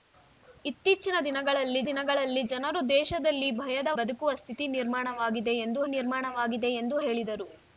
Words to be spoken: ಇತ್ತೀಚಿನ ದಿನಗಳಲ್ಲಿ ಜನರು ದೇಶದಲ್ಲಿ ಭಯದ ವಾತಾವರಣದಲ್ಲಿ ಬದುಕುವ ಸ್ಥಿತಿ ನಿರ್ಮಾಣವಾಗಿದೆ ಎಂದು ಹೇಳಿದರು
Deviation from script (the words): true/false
true